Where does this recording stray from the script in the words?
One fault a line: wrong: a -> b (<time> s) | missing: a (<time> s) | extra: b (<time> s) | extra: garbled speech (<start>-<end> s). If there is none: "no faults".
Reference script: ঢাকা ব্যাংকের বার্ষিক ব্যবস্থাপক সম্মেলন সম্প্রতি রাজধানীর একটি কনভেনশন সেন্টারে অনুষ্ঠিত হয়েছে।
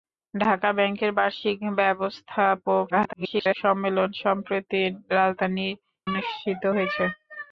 extra: garbled speech (2.9-3.5 s)
missing: একটি কনভেনশন সেন্টারে (5.7 s)